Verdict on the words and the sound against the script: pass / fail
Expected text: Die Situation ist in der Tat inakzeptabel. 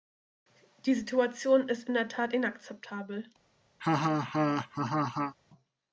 fail